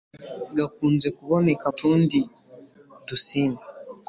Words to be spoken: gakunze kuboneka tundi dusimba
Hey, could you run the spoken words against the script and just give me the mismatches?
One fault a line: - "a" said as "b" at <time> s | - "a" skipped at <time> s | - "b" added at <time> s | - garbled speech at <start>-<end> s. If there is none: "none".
none